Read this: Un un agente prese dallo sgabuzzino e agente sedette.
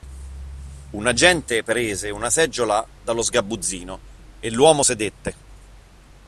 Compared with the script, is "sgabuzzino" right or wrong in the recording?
right